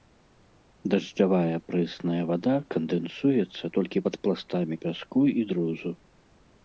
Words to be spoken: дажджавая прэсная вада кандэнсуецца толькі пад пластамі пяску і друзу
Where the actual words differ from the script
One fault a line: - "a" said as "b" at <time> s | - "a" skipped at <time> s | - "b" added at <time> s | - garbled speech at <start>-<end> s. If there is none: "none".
none